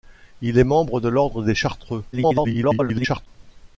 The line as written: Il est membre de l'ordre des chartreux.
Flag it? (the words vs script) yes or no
yes